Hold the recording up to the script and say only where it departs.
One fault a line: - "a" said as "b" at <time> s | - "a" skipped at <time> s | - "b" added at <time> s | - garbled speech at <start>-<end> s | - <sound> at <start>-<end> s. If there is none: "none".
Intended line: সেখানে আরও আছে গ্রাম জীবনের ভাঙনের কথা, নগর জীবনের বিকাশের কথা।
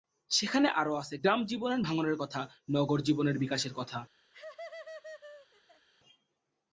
- laugh at 4.3-5.9 s